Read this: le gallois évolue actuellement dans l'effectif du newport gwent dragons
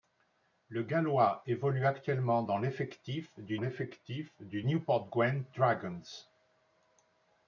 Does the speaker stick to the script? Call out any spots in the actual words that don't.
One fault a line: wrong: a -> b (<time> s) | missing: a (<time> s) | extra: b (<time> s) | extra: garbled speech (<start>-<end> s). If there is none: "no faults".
extra: l'effectif du (3.6 s)